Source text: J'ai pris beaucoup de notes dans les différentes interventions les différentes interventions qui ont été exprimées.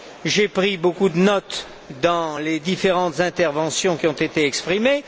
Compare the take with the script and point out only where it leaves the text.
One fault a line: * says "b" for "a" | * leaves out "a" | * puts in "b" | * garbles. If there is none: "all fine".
* leaves out "les différentes interventions"